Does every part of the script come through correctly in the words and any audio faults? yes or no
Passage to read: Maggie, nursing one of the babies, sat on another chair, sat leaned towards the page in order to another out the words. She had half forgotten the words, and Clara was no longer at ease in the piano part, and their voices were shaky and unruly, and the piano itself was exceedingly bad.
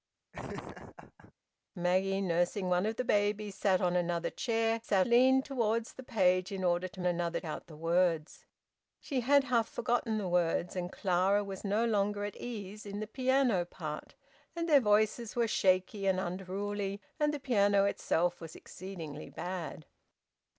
no